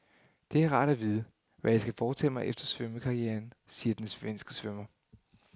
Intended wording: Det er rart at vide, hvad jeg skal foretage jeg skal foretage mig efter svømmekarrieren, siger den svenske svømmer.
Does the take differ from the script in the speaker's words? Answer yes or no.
yes